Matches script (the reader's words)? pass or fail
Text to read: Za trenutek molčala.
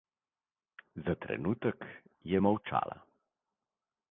fail